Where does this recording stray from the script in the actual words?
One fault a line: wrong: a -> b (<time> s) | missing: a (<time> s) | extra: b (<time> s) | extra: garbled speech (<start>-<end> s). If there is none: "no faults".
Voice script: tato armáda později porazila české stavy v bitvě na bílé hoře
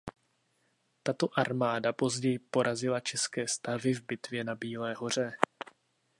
no faults